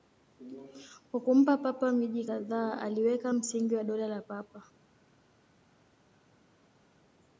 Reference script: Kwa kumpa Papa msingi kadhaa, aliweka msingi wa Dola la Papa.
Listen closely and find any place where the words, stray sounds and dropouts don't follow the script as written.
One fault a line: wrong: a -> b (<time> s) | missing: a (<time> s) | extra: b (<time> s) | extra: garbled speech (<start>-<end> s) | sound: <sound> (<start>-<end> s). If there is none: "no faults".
wrong: msingi -> miji (1.9 s)